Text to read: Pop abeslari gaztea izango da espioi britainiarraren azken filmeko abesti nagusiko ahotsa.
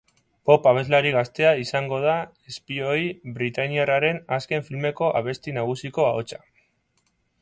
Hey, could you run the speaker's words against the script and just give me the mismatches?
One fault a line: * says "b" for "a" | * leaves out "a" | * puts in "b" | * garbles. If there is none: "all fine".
all fine